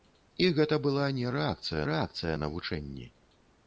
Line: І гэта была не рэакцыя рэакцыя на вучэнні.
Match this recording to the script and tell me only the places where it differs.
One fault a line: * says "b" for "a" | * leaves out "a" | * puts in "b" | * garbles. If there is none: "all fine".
all fine